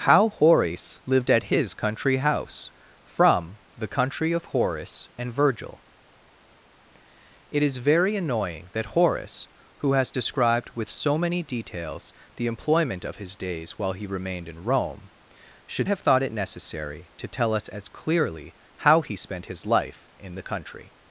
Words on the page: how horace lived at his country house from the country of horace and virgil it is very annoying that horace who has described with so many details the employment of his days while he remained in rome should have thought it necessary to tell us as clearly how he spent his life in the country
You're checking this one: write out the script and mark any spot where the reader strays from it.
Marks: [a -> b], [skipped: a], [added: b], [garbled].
how horace lived at his country house from the country of horace and virgil it is very annoying that horace who has described with so many details the employment of his days while he remained in rome should have thought it necessary to tell us as clearly how he spent his life in the country